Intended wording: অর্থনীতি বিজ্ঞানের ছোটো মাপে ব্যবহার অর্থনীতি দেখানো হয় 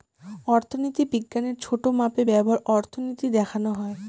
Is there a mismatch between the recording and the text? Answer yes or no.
no